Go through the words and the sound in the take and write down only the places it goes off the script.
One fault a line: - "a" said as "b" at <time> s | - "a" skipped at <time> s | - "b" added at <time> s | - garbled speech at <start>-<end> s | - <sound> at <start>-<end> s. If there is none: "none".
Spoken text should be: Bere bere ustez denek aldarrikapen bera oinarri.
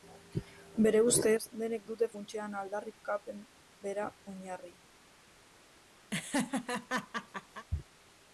- "bere" skipped at 1.0 s
- "dute funtsean" added at 1.9 s
- laugh at 6.1-7.7 s